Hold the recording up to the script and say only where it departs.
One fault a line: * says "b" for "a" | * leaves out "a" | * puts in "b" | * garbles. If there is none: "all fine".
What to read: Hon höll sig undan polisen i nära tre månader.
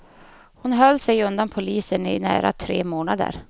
all fine